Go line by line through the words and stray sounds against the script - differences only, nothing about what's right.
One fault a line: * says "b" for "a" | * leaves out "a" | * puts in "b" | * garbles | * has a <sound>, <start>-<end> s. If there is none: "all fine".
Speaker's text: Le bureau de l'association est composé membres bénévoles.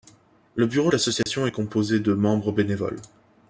* has a dropout, 1.2-1.3 s
* puts in "de"